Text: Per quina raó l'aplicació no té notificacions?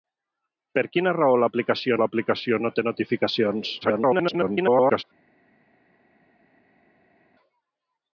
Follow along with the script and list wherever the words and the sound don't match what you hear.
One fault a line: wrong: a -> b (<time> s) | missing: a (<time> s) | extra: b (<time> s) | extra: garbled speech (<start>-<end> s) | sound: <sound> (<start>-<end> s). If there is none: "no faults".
extra: l'aplicació (2.0 s)
extra: garbled speech (3.8-5.0 s)